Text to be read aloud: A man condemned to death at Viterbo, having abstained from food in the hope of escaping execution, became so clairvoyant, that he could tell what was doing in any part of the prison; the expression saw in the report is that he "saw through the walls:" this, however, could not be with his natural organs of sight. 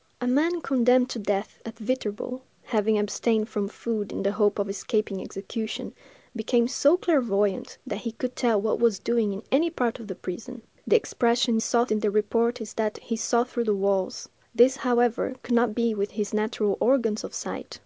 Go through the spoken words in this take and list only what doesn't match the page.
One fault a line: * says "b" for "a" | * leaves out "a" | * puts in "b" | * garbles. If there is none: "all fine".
all fine